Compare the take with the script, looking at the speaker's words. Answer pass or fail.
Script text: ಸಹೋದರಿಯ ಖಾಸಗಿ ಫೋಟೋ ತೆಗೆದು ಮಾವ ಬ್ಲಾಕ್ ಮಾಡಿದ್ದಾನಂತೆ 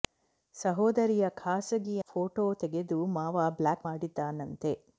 pass